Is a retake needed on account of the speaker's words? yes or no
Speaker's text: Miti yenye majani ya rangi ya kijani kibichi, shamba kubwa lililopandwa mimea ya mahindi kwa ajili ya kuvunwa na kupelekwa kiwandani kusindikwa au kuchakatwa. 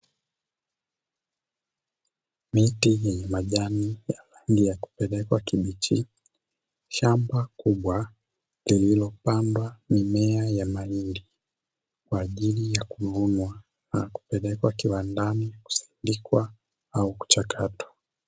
yes